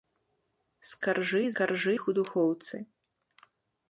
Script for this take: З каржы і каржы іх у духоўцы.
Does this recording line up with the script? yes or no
yes